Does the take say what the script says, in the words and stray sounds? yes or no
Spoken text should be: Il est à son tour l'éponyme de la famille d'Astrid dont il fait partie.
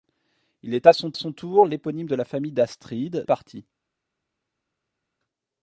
no